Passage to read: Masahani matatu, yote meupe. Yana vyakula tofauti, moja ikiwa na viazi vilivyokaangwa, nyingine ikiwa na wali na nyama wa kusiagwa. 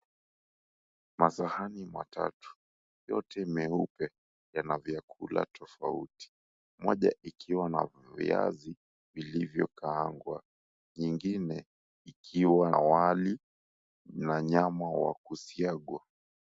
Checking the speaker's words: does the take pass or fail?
fail